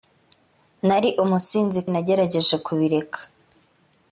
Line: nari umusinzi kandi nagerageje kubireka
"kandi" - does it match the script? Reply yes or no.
no